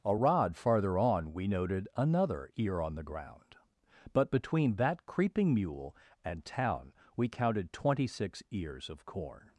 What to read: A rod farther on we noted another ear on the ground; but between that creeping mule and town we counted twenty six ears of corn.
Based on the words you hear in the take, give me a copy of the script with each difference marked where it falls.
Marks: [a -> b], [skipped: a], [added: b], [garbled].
A rod farther on we noted another ear on the ground; but between that creeping mule and town we counted twenty six ears of corn.